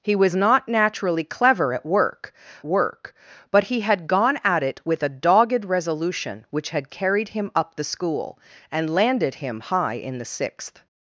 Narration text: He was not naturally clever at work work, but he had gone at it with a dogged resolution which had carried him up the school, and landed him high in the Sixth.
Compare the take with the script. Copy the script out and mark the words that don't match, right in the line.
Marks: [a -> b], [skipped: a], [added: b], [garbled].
He was not naturally clever at work work, but he had gone at it with a dogged resolution which had carried him up the school, and landed him high in the Sixth.